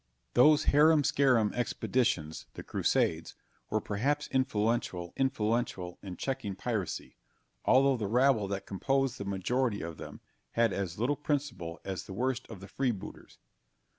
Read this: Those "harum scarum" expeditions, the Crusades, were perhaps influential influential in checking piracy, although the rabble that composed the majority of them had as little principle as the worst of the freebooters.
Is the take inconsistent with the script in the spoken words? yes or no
no